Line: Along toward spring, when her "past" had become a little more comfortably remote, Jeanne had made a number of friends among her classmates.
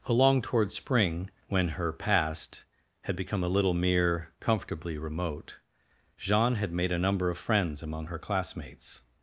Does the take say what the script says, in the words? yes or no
no